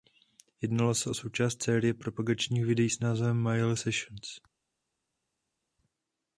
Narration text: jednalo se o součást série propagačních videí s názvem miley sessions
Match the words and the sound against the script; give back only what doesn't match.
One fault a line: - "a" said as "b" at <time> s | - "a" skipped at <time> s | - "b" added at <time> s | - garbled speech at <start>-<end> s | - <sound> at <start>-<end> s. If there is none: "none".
none